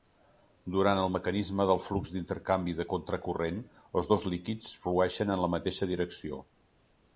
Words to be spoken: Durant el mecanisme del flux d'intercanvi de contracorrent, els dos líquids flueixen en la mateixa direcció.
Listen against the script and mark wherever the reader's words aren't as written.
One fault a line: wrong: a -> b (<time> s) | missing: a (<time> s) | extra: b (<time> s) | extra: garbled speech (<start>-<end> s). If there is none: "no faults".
no faults